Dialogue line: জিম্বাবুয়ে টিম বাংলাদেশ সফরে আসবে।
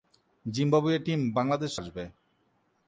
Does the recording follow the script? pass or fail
fail